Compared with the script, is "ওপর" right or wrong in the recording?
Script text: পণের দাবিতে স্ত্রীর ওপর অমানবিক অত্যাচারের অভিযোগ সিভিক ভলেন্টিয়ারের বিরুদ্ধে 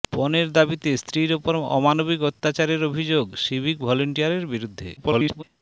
right